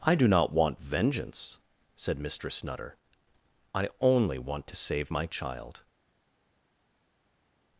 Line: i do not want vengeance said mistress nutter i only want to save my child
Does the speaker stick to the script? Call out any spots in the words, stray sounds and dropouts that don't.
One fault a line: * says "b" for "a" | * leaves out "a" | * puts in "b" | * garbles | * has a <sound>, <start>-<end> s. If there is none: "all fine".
all fine